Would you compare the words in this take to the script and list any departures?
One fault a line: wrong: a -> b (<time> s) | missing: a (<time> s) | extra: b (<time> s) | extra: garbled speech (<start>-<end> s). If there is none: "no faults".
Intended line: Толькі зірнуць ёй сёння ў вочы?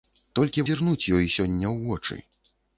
no faults